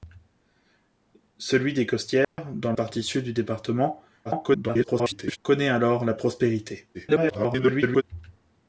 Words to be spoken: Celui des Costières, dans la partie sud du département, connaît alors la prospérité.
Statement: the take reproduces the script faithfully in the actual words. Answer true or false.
false